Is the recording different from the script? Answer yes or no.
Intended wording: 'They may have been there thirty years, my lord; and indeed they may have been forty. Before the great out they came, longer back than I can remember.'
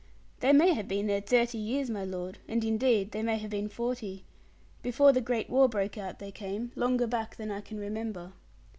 yes